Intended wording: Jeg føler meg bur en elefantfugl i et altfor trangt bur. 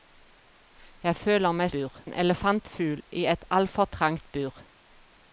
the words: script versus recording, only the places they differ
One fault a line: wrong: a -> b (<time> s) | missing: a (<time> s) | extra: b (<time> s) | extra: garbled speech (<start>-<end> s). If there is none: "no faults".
no faults